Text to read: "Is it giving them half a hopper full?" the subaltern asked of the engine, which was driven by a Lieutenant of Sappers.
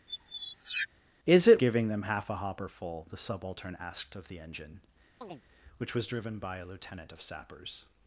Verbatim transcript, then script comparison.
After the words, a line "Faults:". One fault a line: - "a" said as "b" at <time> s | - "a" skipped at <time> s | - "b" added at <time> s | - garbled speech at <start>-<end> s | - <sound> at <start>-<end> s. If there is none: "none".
"Is it giving them half a hopper full?" the subaltern asked of the engine, which was driven by a Lieutenant of Sappers.
Faults:
- squeak at 0.1-0.9 s
- chirp at 5.2-5.4 s